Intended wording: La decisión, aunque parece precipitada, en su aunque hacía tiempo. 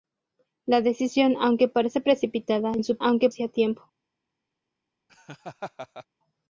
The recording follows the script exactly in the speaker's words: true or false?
true